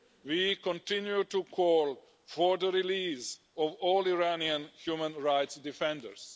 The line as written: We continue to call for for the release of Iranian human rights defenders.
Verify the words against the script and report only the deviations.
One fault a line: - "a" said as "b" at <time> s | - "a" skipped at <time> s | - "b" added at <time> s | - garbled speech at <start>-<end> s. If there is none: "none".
- "for" skipped at 2.6 s
- "all" added at 3.8 s